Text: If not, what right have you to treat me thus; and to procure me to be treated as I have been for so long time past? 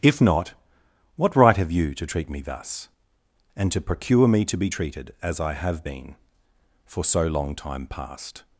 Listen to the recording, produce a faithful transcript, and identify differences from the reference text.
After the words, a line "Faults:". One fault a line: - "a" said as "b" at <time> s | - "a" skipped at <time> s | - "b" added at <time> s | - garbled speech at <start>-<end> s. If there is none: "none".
If not, what right have you to treat me thus; and to procure me to be treated as I have been for so long time past?
Faults:
none